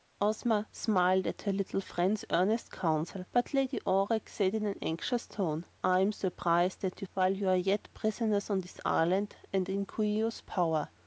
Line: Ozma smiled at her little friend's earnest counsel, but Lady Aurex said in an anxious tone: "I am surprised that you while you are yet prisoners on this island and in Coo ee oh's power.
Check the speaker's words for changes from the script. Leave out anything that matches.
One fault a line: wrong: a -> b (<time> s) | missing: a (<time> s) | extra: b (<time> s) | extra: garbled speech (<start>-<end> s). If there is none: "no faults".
no faults